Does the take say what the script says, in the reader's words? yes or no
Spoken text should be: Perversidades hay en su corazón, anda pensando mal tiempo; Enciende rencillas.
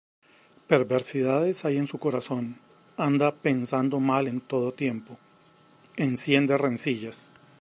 no